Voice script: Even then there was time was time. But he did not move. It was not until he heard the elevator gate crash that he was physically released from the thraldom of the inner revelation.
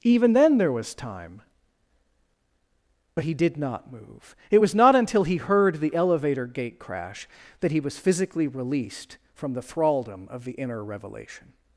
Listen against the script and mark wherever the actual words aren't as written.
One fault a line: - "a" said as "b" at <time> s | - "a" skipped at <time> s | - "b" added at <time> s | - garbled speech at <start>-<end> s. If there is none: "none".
- "was time" skipped at 1.4 s